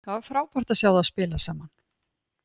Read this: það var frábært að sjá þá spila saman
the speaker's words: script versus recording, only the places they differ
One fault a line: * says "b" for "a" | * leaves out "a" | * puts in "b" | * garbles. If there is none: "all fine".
all fine